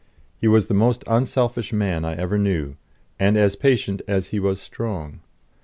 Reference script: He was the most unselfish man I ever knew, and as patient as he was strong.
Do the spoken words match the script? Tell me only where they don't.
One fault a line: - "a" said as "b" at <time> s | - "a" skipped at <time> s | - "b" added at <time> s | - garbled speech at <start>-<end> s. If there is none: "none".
none